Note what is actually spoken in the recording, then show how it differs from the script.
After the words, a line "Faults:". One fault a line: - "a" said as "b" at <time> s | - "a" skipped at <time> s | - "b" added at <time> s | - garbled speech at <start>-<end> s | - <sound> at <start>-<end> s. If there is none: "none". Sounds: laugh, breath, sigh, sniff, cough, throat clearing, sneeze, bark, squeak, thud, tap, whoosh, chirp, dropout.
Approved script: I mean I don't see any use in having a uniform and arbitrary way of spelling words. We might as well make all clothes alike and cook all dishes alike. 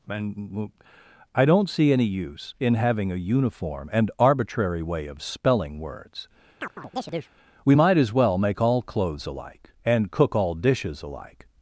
and I don't see any use in having a uniform and arbitrary way of spelling words. We might as well make all clothes alike and cook all dishes alike.
Faults:
- "I mean" said as "and" at 0.1 s
- chirp at 6.6-7.3 s